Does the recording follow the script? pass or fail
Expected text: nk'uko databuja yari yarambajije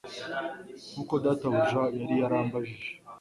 pass